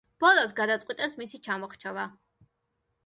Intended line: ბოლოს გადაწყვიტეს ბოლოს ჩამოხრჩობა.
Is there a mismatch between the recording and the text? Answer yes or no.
yes